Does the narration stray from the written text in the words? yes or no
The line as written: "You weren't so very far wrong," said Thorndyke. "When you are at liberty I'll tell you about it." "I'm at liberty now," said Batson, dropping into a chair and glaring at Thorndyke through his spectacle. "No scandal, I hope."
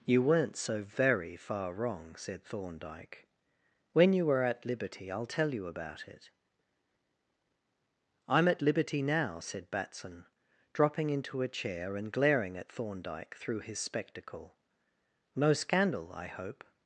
no